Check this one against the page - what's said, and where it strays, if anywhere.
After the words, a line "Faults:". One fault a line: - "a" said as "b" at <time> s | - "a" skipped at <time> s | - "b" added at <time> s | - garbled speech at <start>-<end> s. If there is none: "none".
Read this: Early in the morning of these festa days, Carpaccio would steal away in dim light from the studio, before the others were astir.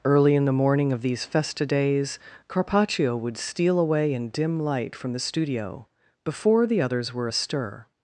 Early in the morning of these festa days, Carpaccio would steal away in dim light from the studio, before the others were astir.
Faults:
none